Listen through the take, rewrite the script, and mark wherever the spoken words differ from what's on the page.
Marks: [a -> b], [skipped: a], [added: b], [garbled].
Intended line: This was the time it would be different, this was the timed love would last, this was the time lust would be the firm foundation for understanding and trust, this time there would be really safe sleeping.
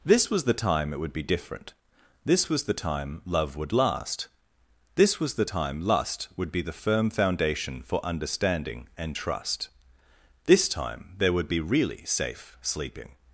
This was the time it would be different, this was the [timed -> time] love would last, this was the time lust would be the firm foundation for understanding and trust, this time there would be really safe sleeping.